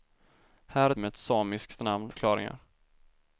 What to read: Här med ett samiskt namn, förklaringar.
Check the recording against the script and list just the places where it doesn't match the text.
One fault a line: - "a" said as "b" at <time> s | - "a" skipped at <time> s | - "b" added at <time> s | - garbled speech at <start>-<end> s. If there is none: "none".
none